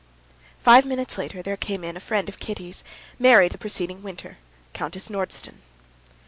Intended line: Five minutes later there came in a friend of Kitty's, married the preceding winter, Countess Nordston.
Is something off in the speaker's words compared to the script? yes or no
no